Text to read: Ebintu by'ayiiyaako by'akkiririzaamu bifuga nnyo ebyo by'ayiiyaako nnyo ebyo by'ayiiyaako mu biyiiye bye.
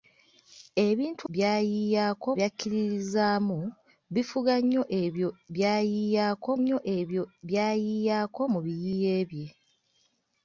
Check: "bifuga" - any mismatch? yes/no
no